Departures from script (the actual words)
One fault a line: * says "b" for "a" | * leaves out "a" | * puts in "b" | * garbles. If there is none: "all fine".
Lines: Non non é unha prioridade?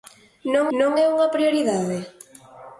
all fine